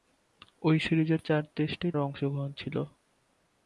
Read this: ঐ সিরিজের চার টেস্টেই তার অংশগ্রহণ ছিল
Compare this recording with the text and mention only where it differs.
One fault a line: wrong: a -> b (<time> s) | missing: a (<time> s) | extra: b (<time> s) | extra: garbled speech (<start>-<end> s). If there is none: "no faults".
missing: তার (1.9 s)